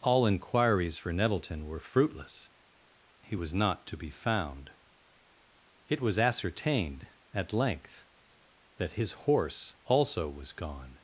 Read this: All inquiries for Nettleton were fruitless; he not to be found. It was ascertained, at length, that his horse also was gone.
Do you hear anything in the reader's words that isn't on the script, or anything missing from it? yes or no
yes